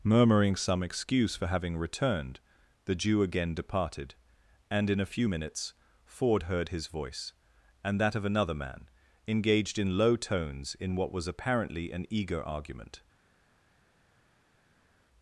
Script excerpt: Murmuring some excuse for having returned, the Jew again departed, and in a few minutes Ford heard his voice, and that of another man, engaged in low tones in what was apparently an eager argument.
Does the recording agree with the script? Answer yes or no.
yes